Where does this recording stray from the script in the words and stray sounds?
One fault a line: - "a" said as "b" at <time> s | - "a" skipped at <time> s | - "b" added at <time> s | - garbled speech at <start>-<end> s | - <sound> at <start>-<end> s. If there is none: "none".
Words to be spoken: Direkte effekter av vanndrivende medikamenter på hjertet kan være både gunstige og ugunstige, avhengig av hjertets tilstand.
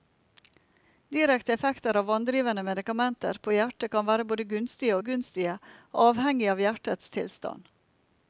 - "og" skipped at 5.0 s